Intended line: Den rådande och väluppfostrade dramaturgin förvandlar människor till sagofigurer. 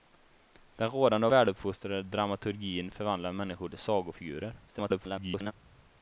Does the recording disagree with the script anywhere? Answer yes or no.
yes